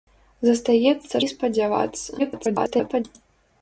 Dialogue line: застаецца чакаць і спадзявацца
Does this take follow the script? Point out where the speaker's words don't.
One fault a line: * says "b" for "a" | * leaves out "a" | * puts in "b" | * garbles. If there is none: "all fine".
* leaves out "чакаць"
* garbles